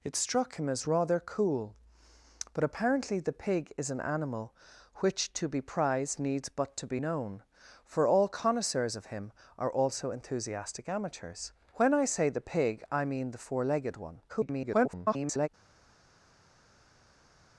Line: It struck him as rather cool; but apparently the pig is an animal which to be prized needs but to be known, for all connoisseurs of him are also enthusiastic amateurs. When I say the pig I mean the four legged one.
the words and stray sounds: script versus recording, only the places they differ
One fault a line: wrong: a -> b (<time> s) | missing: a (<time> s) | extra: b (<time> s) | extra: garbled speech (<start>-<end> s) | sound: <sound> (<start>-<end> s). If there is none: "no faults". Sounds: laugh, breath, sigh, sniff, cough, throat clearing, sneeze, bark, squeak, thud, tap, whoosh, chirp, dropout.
extra: garbled speech (14.3-15.5 s)